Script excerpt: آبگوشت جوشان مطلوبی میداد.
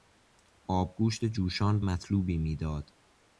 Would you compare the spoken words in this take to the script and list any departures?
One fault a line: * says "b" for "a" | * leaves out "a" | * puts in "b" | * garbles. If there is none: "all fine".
all fine